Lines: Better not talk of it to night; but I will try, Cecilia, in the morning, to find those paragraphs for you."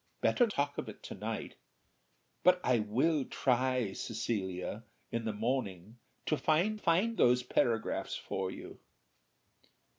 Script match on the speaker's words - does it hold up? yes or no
no